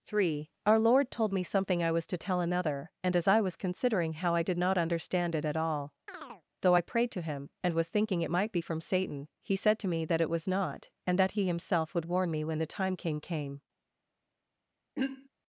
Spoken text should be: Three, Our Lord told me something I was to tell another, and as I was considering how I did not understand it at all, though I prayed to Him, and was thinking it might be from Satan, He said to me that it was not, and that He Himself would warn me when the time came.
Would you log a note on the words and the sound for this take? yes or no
yes